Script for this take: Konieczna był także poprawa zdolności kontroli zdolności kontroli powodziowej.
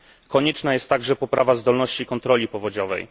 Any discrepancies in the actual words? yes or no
yes